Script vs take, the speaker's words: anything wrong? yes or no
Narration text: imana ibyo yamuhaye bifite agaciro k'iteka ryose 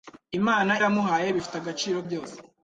yes